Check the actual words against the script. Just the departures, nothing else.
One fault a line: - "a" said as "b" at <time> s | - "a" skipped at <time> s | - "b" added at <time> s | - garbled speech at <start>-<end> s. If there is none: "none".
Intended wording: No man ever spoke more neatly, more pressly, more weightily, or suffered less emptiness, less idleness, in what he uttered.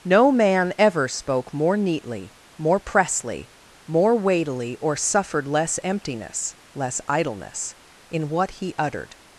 none